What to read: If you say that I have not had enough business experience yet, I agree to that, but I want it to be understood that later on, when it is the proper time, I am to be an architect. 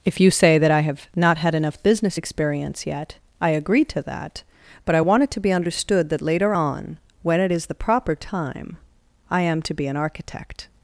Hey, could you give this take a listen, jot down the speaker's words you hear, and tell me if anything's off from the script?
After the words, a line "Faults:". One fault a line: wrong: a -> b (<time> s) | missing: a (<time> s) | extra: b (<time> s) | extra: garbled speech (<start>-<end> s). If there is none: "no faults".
If you say that I have not had enough business experience yet, I agree to that, but I want it to be understood that later on, when it is the proper time, I am to be an architect.
Faults:
no faults